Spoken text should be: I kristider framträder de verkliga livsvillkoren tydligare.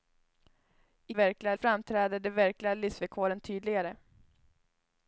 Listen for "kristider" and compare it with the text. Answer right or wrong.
wrong